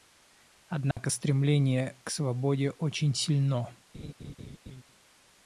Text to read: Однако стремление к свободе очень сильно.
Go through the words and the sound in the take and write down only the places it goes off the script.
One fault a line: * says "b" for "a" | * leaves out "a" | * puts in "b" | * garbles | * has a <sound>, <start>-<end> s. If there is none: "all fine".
* has a dropout, 0.9-1.0 s
* has a laugh, 3.9-4.8 s